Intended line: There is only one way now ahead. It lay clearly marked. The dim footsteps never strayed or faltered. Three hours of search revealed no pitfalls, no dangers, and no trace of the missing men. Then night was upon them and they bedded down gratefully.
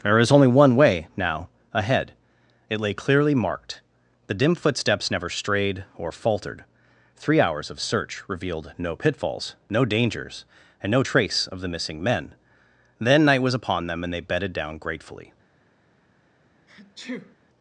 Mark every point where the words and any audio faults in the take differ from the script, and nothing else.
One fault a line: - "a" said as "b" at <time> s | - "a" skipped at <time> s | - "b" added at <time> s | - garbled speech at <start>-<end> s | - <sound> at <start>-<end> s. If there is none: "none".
- sneeze at 16.7-17.4 s